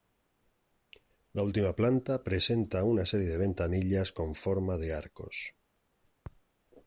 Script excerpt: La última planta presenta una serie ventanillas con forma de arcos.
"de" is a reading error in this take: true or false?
false